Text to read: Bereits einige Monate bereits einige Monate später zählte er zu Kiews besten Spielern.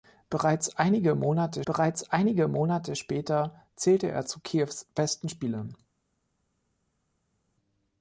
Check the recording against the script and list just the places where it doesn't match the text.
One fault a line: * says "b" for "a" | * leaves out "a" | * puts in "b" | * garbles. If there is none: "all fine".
all fine